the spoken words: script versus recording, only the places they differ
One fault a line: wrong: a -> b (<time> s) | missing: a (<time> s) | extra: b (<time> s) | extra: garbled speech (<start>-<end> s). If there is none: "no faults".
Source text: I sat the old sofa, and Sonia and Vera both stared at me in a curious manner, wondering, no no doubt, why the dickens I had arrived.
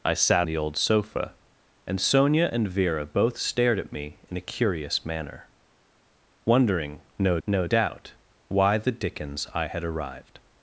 no faults